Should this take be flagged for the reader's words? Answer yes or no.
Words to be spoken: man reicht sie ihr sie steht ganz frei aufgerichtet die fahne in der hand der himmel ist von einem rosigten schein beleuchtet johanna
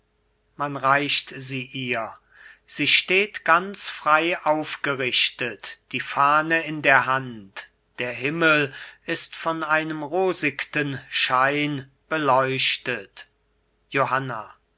no